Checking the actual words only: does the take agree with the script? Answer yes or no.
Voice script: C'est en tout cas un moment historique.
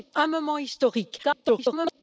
no